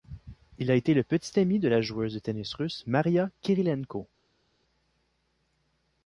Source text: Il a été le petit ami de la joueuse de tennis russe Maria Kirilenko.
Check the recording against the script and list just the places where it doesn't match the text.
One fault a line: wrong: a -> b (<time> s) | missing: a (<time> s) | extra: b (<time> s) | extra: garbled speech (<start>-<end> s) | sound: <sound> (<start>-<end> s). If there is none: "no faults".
no faults